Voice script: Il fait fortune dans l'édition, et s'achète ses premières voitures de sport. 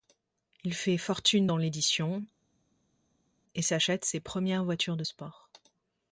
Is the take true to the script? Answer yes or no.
yes